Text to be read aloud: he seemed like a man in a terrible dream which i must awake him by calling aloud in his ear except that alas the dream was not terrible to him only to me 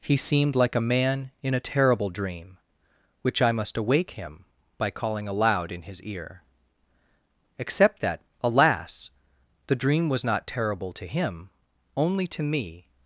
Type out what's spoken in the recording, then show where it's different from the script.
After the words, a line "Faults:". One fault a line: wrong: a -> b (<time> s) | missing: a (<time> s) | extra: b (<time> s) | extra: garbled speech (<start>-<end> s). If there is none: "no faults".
he seemed like a man in a terrible dream which i must awake him by calling aloud in his ear except that alas the dream was not terrible to him only to me
Faults:
no faults